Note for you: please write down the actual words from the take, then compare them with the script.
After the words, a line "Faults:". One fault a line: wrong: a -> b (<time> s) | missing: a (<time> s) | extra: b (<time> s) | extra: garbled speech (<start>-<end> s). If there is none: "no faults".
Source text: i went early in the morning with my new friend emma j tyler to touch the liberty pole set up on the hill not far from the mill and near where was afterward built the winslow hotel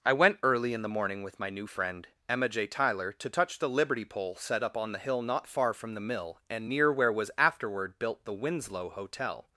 i went early in the morning with my new friend emma j tyler to touch the liberty pole set up on the hill not far from the mill and near where was afterward built the winslow hotel
Faults:
no faults